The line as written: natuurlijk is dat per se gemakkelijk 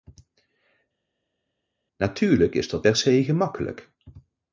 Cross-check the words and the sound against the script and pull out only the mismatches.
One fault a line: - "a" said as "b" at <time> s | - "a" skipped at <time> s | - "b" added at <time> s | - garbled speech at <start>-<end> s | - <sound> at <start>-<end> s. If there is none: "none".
none